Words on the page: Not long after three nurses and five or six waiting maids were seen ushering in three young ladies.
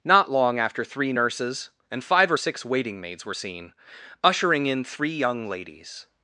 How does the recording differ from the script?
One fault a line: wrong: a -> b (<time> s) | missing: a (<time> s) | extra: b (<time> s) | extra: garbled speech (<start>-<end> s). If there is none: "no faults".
no faults